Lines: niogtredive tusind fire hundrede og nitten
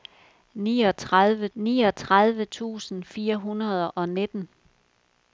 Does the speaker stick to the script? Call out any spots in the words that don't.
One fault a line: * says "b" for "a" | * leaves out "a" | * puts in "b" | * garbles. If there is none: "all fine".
* puts in "niogtredive"